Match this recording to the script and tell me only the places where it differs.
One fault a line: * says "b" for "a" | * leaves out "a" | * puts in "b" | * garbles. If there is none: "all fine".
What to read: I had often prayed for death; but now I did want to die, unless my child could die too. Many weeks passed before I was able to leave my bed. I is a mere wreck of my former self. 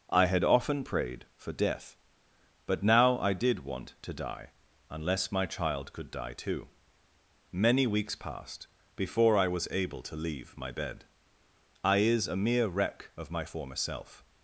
all fine